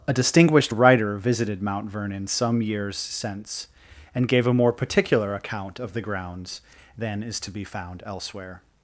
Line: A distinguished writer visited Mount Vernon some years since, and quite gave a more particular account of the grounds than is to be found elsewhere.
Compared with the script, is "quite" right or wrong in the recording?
wrong